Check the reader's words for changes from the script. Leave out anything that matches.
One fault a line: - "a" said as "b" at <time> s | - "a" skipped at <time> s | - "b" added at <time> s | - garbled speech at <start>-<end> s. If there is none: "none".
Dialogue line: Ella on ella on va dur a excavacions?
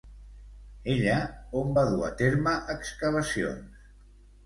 - "ella on" skipped at 1.8 s
- "terme" added at 2.2 s